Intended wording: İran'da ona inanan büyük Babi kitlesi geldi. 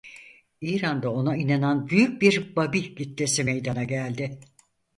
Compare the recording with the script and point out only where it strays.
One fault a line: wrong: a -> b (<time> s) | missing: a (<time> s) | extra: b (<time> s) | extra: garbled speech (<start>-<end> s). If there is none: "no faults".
extra: bir (2.2 s)
extra: meydana (3.4 s)